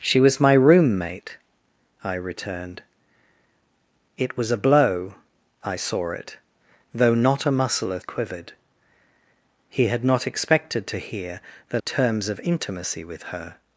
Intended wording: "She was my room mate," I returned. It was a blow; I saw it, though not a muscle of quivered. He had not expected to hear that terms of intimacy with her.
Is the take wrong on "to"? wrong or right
right